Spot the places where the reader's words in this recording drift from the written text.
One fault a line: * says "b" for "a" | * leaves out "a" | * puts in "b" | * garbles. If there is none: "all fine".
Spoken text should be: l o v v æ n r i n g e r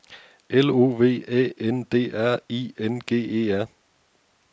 * leaves out "v"
* puts in "d"